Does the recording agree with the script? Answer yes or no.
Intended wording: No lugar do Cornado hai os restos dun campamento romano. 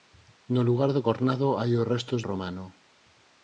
no